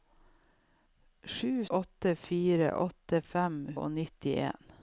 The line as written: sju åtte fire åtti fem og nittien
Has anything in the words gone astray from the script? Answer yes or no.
no